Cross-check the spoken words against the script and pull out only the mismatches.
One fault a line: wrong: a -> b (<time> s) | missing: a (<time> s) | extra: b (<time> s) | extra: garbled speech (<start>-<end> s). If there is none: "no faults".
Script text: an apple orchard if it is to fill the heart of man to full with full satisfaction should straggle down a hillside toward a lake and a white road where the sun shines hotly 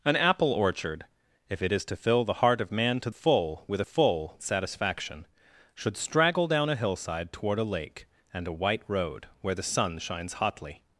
no faults